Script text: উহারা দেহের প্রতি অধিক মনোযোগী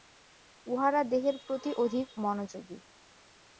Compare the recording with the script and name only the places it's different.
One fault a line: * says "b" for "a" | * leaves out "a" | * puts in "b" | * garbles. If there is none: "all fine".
all fine